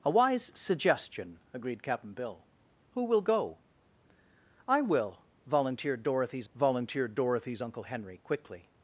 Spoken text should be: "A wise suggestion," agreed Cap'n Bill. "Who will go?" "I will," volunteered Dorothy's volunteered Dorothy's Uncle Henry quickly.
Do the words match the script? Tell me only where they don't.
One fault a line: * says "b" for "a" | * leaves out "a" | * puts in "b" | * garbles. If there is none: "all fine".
all fine